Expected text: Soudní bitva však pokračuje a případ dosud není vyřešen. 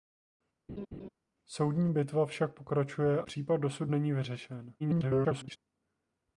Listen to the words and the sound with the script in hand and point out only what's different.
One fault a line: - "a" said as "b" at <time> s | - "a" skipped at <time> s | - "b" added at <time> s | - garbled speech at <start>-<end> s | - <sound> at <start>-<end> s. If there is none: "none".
- laugh at 0.7-1.1 s
- "a" skipped at 3.2 s
- garbled speech at 4.8-5.6 s